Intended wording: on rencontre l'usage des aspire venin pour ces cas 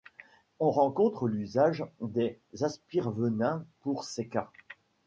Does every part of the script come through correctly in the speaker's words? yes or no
yes